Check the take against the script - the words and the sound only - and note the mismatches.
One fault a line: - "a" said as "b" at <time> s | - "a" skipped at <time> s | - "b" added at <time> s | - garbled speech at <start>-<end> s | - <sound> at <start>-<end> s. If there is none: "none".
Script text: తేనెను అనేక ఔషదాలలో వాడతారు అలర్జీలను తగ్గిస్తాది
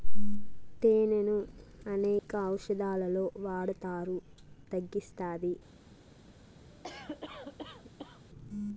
- dropout at 2.2-2.3 s
- "అలర్జీలను" skipped at 4.2 s
- cough at 6.7-8.2 s